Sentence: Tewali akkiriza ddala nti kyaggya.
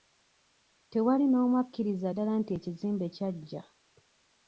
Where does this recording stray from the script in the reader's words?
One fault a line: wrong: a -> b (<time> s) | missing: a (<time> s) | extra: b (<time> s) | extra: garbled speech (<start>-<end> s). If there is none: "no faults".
extra: n'omu (1.3 s)
extra: ekizimbe (2.6 s)